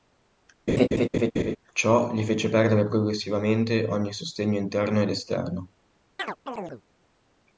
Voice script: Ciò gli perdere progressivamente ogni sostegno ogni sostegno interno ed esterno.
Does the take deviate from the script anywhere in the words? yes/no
yes